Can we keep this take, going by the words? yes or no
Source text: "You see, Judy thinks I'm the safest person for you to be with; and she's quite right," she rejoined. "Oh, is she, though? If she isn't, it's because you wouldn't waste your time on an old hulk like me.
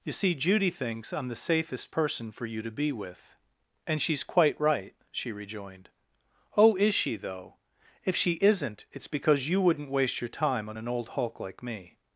yes